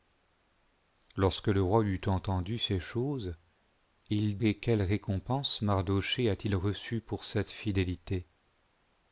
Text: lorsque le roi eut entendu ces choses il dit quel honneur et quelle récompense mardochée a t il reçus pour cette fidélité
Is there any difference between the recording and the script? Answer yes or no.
yes